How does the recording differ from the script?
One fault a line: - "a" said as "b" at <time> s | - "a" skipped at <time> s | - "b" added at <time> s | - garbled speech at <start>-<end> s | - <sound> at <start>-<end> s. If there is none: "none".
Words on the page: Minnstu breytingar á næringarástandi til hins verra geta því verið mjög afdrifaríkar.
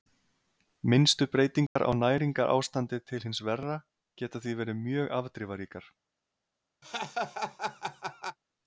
- dropout at 1.7-1.8 s
- laugh at 6.8-8.4 s